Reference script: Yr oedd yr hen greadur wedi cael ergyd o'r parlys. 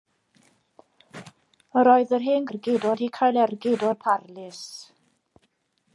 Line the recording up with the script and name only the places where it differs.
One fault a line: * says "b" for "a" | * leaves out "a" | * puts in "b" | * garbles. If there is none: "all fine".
* says "ergyd" for "greadur"